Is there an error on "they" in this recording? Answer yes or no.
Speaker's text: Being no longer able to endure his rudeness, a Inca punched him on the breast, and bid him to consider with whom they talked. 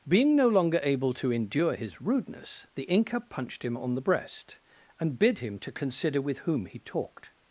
yes